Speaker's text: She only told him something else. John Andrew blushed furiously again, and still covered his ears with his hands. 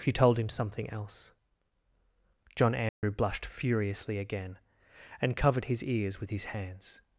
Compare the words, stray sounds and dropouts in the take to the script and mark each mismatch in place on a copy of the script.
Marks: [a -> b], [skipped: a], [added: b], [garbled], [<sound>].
She [skipped: only] told him something else. John Andrew [dropout] blushed furiously again, and [skipped: still] covered his ears with his hands.